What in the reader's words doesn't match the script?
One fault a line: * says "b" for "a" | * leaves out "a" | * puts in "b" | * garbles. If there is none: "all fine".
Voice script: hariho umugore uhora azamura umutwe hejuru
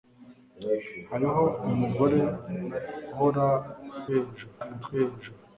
* says "hejuru" for "azamura"